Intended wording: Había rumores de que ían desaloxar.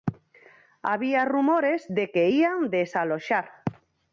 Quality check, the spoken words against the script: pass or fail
pass